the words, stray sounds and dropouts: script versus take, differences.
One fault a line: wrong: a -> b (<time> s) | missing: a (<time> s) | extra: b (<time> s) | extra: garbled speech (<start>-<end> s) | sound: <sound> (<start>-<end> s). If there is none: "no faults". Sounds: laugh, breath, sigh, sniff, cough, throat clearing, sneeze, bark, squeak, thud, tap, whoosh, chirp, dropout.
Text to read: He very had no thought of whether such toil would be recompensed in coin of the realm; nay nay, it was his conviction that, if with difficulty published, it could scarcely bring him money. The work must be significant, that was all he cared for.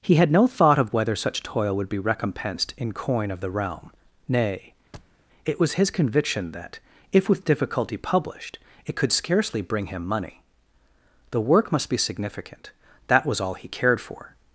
missing: very (0.1 s)
missing: nay (4.7 s)
sound: thud (4.9-5.2 s)